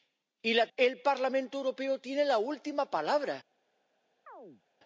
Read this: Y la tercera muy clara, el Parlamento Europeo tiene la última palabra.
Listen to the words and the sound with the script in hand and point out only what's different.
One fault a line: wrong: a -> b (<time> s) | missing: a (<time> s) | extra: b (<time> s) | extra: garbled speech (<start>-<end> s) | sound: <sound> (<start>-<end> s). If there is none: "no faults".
missing: tercera muy clara (0.7 s)
sound: chirp (4.3-4.6 s)